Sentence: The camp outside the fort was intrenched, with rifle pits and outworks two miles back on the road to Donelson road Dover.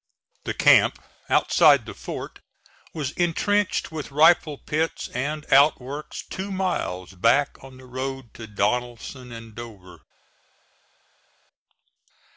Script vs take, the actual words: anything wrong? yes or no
yes